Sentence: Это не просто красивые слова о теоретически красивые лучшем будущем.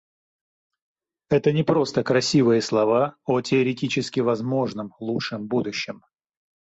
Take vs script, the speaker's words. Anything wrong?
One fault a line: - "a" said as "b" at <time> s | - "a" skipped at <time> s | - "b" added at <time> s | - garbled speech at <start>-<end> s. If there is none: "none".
- "красивые" said as "возможном" at 4.2 s